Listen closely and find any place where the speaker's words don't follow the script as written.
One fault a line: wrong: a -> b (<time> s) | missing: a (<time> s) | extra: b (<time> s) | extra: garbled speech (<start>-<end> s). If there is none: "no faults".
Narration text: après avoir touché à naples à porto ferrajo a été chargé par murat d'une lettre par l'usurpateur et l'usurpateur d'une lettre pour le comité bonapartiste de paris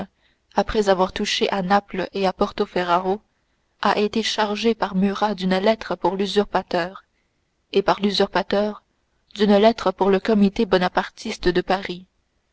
extra: et (2.1 s)
wrong: par -> pour (6.0 s)
extra: par (7.8 s)